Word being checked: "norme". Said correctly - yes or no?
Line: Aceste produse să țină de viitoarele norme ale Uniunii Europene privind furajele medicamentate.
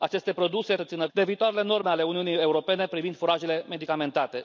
yes